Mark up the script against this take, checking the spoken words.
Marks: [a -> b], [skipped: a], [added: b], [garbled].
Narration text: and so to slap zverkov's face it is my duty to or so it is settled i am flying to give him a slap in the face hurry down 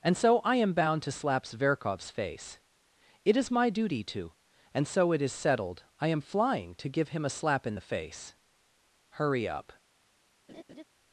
and so [added: i am bound] to slap zverkov's face it is my duty to [or -> and] so it is settled i am flying to give him a slap in the face hurry [down -> up]